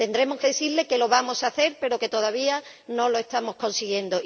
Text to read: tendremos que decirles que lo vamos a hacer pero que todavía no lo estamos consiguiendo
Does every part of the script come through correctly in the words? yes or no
yes